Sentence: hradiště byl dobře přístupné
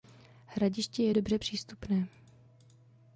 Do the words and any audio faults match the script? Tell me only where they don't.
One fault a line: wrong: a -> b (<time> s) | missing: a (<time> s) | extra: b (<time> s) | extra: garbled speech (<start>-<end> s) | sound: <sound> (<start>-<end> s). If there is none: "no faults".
wrong: byl -> je (1.0 s)